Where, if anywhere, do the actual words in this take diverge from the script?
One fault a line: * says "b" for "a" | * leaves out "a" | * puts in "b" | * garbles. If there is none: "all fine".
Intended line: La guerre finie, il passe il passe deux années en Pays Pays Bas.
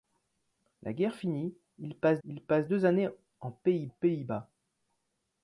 all fine